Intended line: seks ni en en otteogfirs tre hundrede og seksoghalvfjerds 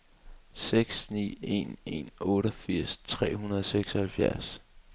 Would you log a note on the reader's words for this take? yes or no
no